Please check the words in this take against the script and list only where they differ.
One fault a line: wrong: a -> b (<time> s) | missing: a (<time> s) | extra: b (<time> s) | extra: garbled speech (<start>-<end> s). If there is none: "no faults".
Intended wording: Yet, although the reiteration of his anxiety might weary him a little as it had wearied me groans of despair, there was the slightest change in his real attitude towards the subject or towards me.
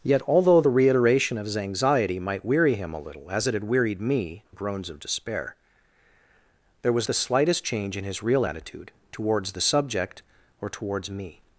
no faults